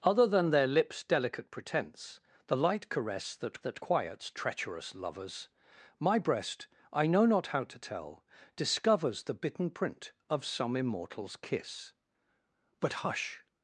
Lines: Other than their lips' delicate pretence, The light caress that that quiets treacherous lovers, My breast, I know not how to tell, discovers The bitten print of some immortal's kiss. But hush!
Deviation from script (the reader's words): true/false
false